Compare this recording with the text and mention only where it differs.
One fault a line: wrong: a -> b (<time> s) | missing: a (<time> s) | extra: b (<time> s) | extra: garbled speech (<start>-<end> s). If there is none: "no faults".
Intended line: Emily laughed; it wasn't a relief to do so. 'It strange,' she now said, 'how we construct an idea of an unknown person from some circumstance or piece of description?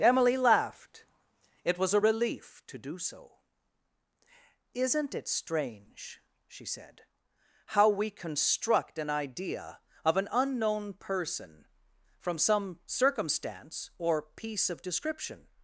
wrong: wasn't -> was (1.8 s)
extra: Isn't (4.7 s)
missing: now (6.6 s)